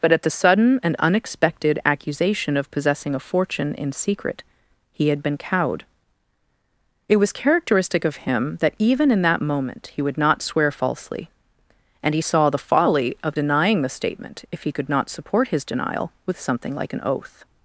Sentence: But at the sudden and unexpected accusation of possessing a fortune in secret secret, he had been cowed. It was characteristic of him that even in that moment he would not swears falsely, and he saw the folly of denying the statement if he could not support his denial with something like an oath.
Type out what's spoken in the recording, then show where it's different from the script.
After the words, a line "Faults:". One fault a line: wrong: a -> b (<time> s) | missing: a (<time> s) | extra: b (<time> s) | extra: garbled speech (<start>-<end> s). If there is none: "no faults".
But at the sudden and unexpected accusation of possessing a fortune in secret, he had been cowed. It was characteristic of him that even in that moment he would not swear falsely, and he saw the folly of denying the statement if he could not support his denial with something like an oath.
Faults:
missing: secret (4.4 s)
wrong: swears -> swear (10.4 s)